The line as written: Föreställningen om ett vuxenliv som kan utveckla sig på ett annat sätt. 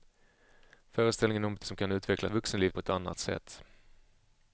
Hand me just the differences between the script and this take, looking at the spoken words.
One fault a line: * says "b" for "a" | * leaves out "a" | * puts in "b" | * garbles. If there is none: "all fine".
* leaves out "vuxenliv"
* says "vuxenliv" for "sig"